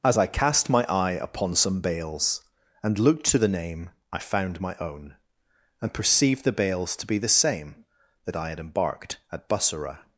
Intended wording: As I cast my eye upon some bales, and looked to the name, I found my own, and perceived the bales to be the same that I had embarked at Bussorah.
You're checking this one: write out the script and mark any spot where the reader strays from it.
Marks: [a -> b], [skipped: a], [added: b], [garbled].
As I cast my eye upon some bales, and looked to the name, I found my own, and perceived the bales to be the same that I had embarked at Bussorah.